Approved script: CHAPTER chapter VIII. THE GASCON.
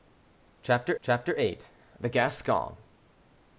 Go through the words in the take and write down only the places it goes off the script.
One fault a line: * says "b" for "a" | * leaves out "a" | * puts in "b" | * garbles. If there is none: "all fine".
all fine